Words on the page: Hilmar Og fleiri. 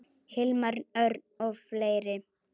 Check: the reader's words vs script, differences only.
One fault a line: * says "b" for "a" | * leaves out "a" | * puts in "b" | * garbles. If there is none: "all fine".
* puts in "Örn"